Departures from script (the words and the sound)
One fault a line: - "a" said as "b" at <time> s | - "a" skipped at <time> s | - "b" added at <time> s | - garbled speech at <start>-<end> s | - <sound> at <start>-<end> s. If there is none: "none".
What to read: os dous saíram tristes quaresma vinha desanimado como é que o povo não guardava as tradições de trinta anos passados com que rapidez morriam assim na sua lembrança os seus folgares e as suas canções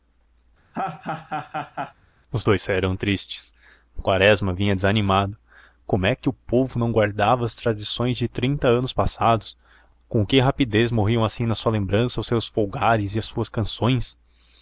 - laugh at 0.7-1.9 s